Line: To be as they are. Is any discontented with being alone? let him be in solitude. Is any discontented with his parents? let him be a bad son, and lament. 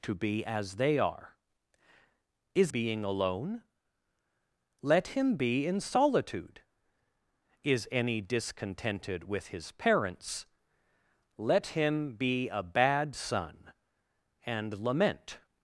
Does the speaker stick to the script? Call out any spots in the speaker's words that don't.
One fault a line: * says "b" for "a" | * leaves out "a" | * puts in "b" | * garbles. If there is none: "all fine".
* leaves out "any discontented with"